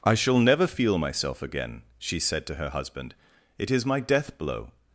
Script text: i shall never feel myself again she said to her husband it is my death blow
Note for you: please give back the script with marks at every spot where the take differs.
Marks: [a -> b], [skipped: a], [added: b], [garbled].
i shall never feel myself again she said to her husband it is my death blow